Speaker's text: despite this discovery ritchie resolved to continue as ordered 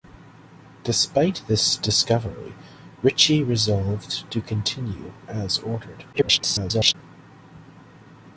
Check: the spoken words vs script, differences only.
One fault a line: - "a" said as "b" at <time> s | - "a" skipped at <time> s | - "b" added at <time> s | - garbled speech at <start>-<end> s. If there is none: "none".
- garbled speech at 6.1-6.9 s